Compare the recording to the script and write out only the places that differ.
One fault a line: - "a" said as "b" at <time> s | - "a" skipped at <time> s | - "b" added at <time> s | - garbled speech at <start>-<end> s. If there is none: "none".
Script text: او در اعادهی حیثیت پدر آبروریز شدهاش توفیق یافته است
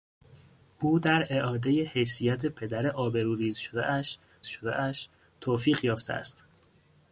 - "شدهاش" added at 4.5 s